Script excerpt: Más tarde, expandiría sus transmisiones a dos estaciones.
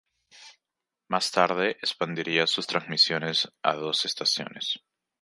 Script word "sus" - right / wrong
right